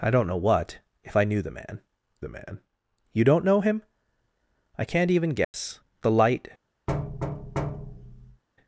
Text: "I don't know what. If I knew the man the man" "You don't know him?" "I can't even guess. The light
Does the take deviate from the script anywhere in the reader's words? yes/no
no